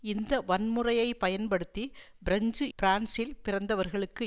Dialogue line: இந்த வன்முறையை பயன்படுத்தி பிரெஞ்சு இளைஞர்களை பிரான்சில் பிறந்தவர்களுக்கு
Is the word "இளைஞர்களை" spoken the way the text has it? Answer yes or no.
no